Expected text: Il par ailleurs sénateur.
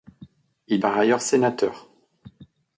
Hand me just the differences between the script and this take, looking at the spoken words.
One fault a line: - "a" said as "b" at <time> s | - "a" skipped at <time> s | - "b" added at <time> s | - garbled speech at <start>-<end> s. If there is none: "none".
none